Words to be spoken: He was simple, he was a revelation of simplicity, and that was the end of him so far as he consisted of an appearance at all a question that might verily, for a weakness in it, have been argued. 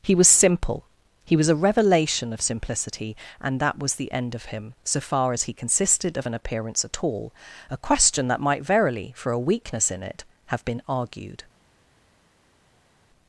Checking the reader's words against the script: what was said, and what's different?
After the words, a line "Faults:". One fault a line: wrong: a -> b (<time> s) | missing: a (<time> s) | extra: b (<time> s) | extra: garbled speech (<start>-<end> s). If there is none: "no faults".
He was simple, he was a revelation of simplicity, and that was the end of him so far as he consisted of an appearance at all a question that might verily, for a weakness in it, have been argued.
Faults:
no faults